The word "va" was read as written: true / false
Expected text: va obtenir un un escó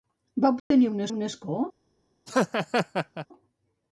true